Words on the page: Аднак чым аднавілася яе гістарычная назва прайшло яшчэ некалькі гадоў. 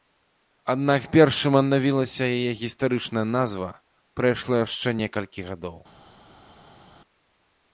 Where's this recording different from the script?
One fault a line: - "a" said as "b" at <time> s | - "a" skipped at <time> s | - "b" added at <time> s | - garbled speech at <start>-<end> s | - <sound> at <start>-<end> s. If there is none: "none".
- "перш" added at 1.1 s